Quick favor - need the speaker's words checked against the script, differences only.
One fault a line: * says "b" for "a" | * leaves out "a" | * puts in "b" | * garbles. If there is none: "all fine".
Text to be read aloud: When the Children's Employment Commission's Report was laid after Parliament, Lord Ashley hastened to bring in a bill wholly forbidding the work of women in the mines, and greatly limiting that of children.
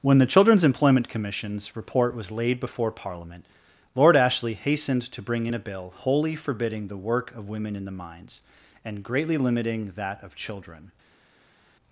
* says "before" for "after"